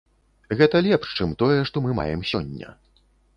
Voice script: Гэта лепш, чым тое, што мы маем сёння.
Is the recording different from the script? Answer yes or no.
no